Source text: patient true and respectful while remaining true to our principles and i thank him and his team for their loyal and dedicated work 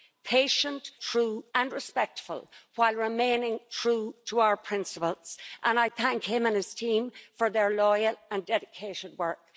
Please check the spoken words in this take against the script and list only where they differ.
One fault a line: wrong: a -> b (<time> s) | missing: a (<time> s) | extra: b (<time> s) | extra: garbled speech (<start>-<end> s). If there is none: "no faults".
no faults